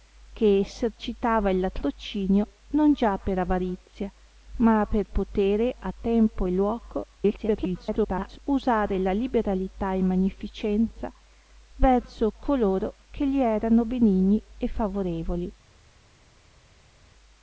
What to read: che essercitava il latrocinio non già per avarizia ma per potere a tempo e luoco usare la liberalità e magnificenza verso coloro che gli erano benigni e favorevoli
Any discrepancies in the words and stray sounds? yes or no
yes